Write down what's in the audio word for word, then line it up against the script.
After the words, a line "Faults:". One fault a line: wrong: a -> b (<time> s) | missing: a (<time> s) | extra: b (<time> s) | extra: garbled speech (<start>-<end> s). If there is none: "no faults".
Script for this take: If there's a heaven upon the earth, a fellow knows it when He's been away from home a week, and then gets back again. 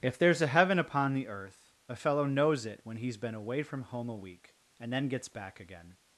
If there's a heaven upon the earth, a fellow knows it when He's been away from home a week, and then gets back again.
Faults:
no faults